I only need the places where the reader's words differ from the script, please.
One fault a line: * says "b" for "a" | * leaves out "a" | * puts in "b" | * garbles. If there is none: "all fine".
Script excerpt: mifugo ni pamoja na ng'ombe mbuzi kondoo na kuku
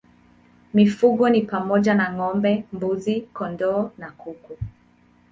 all fine